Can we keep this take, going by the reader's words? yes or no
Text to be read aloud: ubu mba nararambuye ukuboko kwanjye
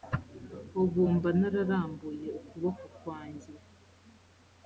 yes